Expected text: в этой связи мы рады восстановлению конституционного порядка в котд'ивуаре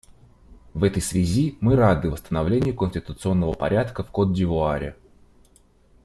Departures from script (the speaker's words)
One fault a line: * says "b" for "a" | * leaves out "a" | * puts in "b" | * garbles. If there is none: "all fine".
all fine